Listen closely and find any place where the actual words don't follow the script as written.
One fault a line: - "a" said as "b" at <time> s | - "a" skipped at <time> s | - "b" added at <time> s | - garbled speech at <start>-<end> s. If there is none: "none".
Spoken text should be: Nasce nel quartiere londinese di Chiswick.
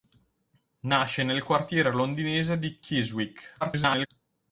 - garbled speech at 3.6-4.1 s